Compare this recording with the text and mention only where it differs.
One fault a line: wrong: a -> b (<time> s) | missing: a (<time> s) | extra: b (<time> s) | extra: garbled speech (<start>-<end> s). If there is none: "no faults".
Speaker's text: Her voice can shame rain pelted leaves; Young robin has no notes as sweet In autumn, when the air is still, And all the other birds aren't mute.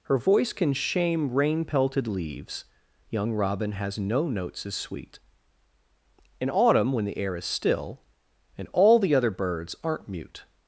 no faults